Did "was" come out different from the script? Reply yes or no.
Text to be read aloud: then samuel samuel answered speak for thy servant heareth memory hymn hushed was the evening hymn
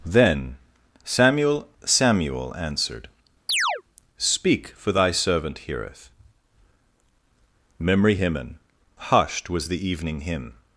no